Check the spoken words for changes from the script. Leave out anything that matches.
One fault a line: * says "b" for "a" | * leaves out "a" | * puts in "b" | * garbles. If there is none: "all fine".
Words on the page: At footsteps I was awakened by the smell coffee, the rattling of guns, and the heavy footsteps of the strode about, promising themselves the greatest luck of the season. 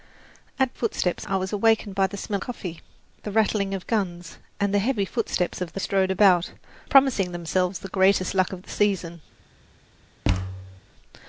all fine